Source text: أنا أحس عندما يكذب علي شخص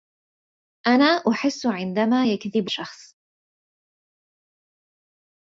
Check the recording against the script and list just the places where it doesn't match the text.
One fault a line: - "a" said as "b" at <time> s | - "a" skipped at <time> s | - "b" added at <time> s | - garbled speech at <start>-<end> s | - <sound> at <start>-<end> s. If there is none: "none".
- "علي" skipped at 2.7 s